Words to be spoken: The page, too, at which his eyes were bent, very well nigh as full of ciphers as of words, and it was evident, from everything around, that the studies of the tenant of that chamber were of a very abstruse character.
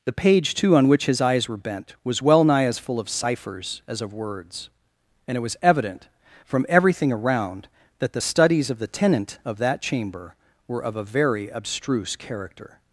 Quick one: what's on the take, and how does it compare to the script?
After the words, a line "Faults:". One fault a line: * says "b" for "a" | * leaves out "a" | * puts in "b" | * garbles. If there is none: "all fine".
The page, too, on which his eyes were bent, was well nigh as full of ciphers as of words, and it was evident, from everything around, that the studies of the tenant of that chamber were of a very abstruse character.
Faults:
* says "on" for "at"
* says "was" for "very"